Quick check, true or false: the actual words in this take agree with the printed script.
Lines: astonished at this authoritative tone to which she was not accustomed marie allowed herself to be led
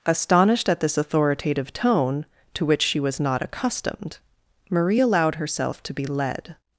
true